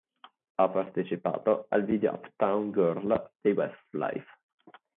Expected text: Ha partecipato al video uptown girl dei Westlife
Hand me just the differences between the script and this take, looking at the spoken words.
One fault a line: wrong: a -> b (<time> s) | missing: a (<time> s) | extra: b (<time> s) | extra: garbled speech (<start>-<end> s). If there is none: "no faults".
no faults